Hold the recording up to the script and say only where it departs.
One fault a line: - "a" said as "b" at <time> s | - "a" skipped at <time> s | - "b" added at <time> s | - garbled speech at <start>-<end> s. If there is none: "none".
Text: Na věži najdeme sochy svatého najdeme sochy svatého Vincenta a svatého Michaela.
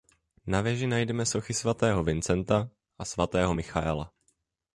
- "najdeme sochy svatého" skipped at 2.0 s